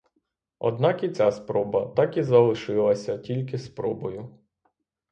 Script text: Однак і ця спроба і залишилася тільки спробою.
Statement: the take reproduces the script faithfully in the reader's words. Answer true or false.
false